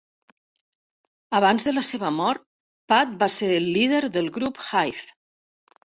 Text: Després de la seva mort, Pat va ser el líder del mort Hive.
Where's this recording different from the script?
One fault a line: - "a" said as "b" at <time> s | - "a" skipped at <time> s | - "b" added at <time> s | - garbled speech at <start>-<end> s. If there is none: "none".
- "Després" said as "Abans" at 1.4 s
- "mort" said as "grup" at 4.4 s